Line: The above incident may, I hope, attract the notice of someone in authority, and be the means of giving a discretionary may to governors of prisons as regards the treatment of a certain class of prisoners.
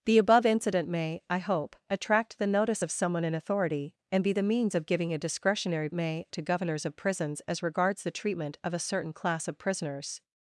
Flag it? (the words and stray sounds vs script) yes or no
no